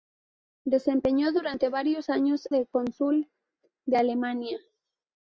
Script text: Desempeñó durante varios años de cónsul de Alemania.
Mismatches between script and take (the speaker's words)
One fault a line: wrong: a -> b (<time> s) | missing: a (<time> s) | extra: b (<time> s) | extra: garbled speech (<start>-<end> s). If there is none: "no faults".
no faults